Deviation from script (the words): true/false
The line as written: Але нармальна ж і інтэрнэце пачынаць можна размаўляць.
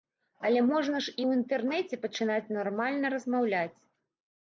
true